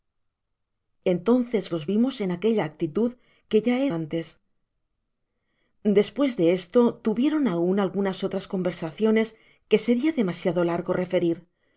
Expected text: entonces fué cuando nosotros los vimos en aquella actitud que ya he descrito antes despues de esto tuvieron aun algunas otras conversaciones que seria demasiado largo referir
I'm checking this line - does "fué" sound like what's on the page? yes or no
no